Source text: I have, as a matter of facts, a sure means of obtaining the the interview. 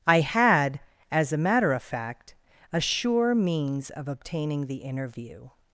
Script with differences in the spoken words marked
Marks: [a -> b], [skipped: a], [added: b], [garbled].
I [have, -> had] as a matter of [facts, -> fact] a sure means of obtaining the [skipped: the] interview.